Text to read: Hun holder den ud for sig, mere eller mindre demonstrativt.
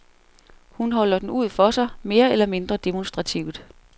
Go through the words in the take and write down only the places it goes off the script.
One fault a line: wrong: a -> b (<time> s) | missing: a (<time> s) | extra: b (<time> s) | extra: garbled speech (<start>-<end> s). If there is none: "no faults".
no faults